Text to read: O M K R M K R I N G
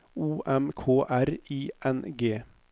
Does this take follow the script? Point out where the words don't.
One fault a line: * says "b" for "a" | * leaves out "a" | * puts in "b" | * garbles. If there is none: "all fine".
* leaves out "M K R"